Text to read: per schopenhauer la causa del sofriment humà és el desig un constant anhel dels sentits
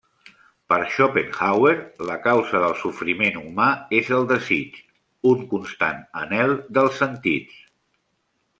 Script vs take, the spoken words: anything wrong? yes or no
no